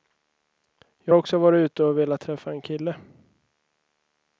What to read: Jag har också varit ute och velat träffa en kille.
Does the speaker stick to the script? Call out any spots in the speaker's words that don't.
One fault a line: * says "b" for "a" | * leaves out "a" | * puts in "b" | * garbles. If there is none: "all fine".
* leaves out "har"